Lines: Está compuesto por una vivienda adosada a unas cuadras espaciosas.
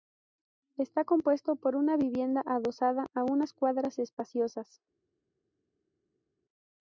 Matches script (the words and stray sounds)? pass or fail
pass